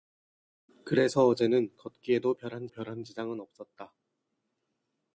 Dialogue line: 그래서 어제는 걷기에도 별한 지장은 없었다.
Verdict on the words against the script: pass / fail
fail